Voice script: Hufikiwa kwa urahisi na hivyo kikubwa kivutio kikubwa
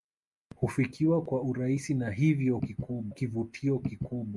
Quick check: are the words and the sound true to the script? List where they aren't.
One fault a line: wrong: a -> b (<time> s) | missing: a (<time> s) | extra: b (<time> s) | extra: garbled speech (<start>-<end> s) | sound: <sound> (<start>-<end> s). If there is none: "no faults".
no faults